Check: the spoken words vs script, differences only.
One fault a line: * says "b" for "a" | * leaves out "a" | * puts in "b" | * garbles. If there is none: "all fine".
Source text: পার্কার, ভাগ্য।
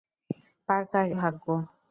all fine